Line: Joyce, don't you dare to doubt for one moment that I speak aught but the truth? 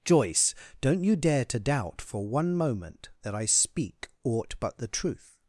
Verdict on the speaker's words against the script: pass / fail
pass